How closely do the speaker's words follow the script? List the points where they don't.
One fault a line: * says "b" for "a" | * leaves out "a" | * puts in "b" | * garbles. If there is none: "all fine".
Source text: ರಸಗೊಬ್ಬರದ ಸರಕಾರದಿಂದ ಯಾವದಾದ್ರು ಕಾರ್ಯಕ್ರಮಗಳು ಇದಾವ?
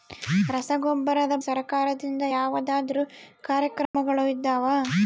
all fine